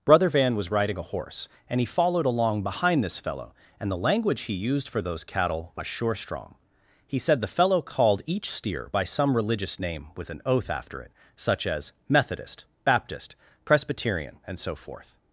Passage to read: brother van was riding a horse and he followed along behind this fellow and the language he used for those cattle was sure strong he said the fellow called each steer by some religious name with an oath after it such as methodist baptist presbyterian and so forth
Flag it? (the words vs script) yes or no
no